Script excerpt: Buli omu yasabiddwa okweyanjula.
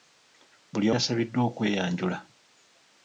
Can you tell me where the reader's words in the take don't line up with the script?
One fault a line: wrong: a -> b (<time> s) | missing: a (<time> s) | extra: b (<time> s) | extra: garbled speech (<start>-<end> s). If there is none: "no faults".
missing: omu (0.9 s)